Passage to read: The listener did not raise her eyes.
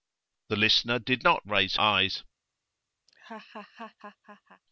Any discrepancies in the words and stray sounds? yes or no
yes